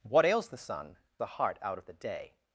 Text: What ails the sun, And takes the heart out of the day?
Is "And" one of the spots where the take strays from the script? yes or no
yes